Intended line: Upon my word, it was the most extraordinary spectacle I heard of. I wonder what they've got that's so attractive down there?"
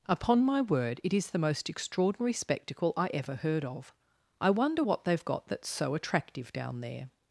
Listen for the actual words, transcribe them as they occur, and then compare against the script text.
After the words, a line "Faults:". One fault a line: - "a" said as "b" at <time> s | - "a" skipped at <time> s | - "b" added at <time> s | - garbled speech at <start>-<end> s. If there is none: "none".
Upon my word, it is the most extraordinary spectacle I ever heard of. I wonder what they've got that's so attractive down there?"
Faults:
- "was" said as "is" at 1.1 s
- "ever" added at 3.1 s